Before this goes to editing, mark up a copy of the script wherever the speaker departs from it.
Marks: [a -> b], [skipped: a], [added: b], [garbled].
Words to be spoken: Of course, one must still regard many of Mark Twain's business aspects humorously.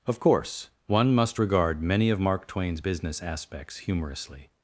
Of course, one must [skipped: still] regard many of Mark Twain's business aspects humorously.